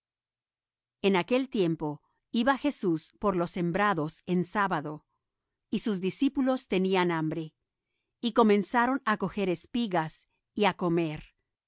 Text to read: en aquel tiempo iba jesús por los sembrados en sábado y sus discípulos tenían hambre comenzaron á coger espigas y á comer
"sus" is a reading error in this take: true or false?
false